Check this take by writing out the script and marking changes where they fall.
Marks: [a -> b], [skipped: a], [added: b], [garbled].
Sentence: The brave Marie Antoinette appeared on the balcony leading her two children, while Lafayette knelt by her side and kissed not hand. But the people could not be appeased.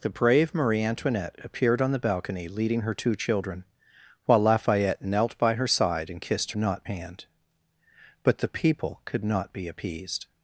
The brave Marie Antoinette appeared on the balcony leading her two children, while Lafayette knelt by her side and kissed not hand. But the people could not be appeased.